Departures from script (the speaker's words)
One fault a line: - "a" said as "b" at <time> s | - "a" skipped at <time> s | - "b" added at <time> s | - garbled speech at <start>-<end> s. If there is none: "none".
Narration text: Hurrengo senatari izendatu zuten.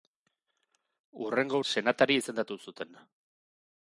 none